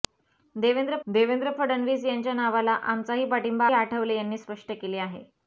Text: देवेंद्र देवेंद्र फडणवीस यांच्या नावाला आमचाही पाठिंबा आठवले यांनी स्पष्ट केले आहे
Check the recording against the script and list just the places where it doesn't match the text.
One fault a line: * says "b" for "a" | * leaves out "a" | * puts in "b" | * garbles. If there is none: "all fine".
all fine